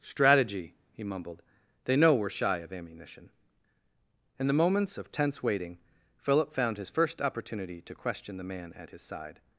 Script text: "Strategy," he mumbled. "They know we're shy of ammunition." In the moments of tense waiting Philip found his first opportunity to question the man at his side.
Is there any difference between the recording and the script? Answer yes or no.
no